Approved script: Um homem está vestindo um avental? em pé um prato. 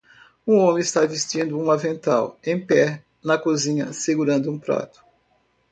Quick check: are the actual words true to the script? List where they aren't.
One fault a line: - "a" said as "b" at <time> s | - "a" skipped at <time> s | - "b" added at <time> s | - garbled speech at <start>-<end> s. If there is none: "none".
- "na cozinha segurando" added at 3.2 s